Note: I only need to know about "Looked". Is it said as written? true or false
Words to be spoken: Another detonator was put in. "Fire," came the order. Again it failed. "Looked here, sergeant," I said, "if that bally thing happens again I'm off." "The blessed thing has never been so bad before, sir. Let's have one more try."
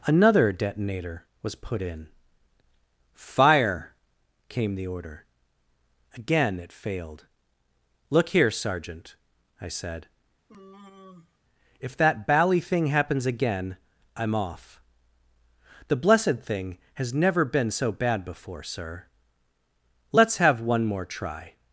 false